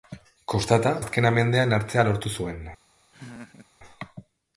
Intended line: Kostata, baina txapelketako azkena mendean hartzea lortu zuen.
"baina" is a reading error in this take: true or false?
true